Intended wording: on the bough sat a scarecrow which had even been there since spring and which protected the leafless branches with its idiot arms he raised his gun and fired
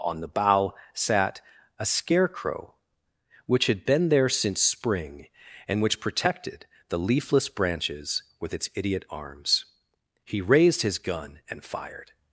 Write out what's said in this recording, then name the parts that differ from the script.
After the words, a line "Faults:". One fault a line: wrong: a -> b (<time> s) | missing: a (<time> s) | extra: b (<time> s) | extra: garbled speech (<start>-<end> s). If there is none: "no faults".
on the bough sat a scarecrow which had been there since spring and which protected the leafless branches with its idiot arms he raised his gun and fired
Faults:
missing: even (3.9 s)